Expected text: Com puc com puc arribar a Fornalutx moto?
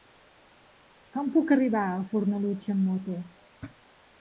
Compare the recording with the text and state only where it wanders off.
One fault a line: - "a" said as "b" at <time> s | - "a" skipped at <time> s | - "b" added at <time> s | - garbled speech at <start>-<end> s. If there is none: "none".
- "com puc" skipped at 1.5 s
- "amb" added at 2.8 s